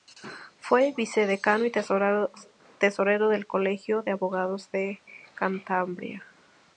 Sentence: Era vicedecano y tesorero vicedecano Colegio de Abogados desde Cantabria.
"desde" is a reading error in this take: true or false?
true